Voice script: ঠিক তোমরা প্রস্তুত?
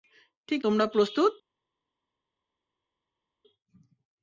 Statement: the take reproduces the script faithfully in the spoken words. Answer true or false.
true